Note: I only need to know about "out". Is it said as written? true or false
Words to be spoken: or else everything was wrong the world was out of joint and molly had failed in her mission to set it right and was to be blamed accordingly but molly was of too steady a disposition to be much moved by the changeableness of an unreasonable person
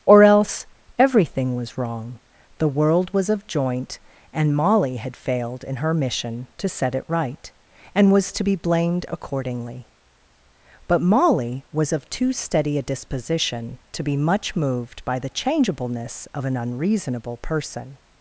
false